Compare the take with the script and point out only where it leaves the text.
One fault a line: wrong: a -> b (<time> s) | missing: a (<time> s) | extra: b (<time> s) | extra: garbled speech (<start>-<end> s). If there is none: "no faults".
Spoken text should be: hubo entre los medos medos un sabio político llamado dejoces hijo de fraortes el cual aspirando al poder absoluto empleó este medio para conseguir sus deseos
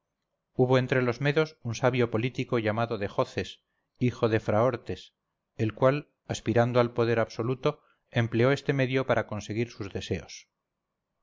missing: medos (1.6 s)